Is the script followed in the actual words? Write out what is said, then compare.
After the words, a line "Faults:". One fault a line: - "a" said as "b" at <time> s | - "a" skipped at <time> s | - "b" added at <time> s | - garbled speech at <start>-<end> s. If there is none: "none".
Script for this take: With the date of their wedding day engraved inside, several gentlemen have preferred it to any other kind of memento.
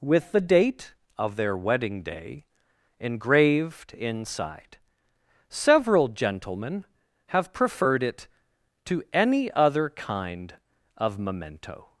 With the date of their wedding day engraved inside, several gentlemen have preferred it to any other kind of memento.
Faults:
none